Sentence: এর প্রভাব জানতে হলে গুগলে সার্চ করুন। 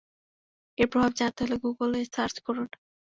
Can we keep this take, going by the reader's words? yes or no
yes